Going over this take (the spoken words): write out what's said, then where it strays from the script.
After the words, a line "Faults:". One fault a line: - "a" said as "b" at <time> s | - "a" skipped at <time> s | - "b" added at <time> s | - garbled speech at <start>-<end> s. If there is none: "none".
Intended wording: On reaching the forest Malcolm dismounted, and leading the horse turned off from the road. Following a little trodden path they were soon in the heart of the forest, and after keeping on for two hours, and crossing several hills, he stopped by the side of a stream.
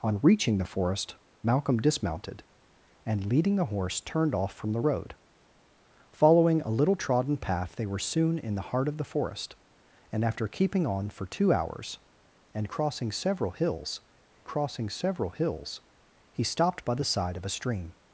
On reaching the forest Malcolm dismounted, and leading the horse turned off from the road. Following a little trodden path they were soon in the heart of the forest, and after keeping on for two hours, and crossing several hills crossing several hills, he stopped by the side of a stream.
Faults:
- "crossing several hills" added at 14.5 s